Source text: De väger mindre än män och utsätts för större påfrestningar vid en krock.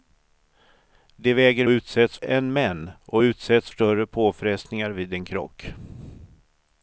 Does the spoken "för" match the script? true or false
false